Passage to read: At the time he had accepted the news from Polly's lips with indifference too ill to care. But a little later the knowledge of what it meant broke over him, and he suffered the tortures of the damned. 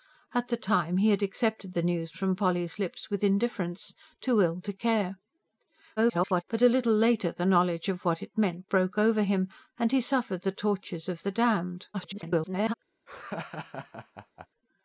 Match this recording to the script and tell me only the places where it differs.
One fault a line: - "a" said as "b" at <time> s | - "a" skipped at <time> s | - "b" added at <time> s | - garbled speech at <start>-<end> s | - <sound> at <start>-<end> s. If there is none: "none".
- garbled speech at 6.0-6.4 s
- garbled speech at 11.9-12.7 s
- laugh at 13.1-14.5 s